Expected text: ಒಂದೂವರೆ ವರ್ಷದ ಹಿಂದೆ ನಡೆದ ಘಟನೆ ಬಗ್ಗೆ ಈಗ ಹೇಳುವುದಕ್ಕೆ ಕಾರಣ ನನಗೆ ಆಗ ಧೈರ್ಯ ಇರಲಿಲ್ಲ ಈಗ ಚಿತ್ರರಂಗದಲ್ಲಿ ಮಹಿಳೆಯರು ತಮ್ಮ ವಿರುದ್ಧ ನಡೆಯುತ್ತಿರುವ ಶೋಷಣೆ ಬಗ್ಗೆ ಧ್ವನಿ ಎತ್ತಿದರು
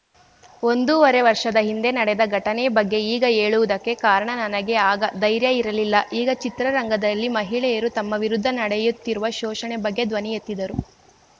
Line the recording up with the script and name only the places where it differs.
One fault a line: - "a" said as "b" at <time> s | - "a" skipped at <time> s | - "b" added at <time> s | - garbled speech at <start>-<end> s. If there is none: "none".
none